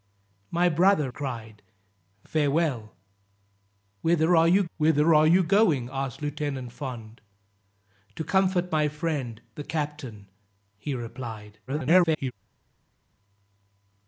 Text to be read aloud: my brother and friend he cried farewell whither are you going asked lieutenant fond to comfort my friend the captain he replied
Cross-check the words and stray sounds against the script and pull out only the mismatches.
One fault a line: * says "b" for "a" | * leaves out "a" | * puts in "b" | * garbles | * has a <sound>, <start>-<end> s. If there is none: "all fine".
* says "cried farewell whither are you" for "and friend he cried farewell"
* garbles